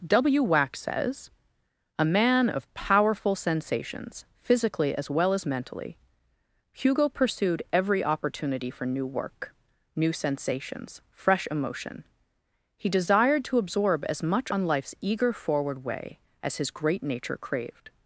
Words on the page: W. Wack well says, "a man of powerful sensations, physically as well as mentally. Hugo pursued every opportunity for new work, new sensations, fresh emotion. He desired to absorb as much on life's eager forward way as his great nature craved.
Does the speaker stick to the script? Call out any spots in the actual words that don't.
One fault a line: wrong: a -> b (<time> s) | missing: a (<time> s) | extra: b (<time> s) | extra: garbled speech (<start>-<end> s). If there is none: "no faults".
missing: well (0.8 s)